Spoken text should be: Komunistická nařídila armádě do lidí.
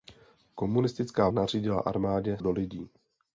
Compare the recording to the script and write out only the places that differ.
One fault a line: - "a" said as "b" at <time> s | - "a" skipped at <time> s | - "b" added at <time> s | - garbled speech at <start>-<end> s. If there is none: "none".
none